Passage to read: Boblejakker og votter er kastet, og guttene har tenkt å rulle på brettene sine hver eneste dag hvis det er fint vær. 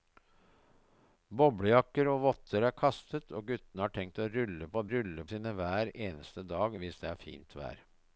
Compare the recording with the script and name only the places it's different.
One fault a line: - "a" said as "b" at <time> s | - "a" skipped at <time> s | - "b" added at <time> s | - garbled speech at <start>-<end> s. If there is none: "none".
- "brettene" said as "rulle" at 4.9 s